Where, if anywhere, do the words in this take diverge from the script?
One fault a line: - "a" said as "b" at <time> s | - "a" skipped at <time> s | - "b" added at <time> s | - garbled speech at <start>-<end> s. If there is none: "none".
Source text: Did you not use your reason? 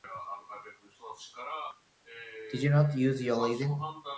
none